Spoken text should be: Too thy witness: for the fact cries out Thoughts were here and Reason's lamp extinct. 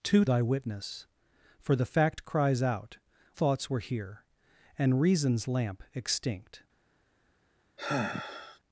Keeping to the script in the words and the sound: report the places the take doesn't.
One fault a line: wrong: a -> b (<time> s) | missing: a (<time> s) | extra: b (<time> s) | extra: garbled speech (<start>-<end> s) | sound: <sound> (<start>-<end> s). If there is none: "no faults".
sound: sigh (7.8-8.6 s)